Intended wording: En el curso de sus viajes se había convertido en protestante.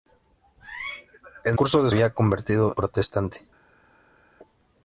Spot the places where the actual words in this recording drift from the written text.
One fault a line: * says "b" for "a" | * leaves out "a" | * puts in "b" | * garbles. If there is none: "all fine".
* leaves out "el"
* leaves out "sus viajes se"
* leaves out "en"